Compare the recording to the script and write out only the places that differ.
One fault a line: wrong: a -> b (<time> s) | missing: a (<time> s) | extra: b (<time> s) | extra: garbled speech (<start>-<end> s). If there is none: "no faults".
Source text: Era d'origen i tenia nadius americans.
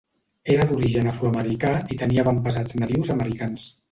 extra: afroamericà (1.1 s)
extra: avantpassats (2.2 s)